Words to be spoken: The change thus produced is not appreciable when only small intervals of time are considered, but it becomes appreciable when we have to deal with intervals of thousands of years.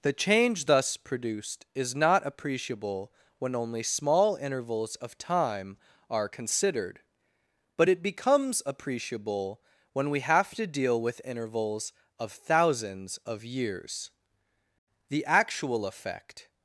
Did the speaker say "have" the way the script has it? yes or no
yes